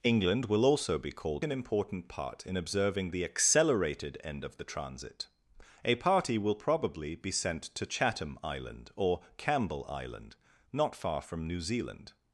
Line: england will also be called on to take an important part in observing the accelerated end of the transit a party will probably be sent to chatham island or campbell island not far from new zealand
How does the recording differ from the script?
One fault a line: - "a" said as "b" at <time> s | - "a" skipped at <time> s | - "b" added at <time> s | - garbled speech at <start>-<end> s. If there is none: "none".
- "on to take" skipped at 1.4 s